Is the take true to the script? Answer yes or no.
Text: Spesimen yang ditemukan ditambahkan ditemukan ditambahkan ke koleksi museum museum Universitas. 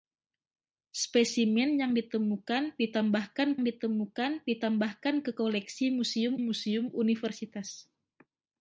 yes